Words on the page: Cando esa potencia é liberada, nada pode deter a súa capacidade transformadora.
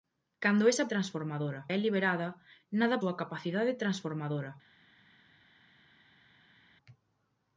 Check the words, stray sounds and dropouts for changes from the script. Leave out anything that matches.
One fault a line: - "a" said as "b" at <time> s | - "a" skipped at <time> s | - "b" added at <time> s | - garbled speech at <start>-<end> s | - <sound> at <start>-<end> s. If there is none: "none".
- "potencia" said as "transformadora" at 0.9 s
- "pode deter a" skipped at 3.0 s